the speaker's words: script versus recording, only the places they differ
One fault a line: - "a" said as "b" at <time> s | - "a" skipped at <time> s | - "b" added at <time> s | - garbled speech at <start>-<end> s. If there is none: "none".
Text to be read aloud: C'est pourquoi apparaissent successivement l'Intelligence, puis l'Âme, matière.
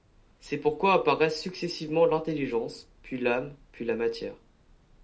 - "puis la" added at 3.7 s